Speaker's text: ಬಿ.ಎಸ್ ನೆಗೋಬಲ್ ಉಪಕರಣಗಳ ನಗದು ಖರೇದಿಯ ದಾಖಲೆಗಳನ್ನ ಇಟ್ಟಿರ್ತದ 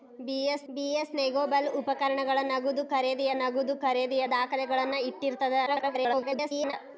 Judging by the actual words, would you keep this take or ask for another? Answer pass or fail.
fail